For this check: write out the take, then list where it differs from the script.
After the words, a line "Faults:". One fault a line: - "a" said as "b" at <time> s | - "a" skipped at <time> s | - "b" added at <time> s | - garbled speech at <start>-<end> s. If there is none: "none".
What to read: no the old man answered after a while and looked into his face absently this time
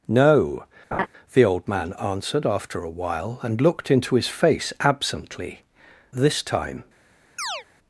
no the old man answered after a while and looked into his face absently this time
Faults:
none